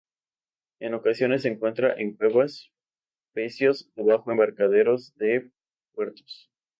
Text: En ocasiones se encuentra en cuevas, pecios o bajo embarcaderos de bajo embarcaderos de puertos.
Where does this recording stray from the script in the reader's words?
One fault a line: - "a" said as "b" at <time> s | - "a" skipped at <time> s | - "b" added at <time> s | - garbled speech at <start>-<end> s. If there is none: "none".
- "bajo embarcaderos de" skipped at 5.5 s